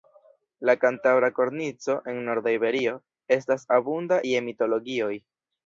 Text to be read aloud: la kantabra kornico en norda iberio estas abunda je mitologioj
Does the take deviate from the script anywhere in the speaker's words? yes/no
no